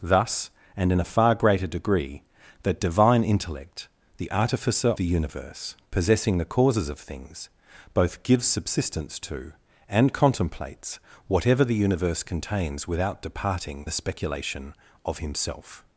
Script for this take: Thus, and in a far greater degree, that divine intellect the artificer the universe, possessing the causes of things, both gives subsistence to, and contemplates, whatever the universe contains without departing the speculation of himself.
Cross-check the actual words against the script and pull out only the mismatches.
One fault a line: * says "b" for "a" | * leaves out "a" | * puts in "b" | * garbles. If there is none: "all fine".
all fine